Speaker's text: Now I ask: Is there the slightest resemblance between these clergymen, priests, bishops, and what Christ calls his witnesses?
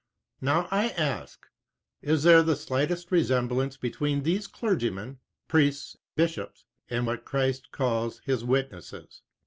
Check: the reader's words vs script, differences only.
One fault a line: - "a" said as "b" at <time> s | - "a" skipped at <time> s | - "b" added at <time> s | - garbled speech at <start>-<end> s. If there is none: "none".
none